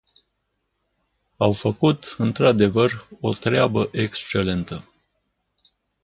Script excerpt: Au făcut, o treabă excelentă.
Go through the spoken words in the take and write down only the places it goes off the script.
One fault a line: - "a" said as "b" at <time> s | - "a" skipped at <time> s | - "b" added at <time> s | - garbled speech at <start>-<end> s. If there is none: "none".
- "într adevăr" added at 2.2 s